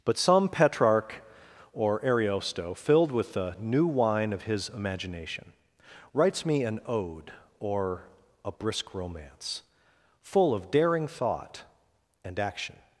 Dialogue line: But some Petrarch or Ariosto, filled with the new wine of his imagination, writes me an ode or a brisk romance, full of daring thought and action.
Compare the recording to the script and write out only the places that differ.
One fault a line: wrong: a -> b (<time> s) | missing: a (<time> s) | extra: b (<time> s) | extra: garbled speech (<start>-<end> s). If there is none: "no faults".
no faults